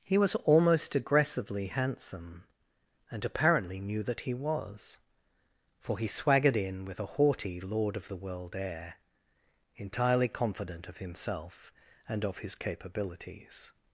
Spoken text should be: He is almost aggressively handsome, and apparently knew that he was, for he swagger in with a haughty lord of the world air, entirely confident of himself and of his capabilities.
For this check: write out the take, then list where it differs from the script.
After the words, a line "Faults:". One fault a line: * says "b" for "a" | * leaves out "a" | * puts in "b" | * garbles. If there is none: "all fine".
He was almost aggressively handsome, and apparently knew that he was, for he swaggered in with a haughty lord of the world air, entirely confident of himself and of his capabilities.
Faults:
* says "was" for "is"
* says "swaggered" for "swagger"